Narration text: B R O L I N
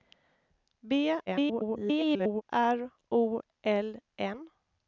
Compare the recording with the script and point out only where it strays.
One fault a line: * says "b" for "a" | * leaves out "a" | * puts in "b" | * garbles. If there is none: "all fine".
* garbles
* leaves out "I"